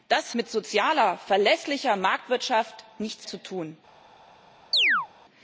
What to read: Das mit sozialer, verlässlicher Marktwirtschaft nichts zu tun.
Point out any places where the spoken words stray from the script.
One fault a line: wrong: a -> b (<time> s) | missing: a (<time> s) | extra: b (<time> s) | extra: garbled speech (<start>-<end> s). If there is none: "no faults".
no faults